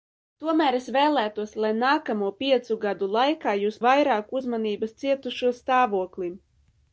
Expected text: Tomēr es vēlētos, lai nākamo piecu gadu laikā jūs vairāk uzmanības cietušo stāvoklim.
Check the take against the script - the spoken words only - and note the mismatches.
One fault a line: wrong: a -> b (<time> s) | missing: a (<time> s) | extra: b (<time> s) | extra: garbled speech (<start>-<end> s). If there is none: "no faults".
no faults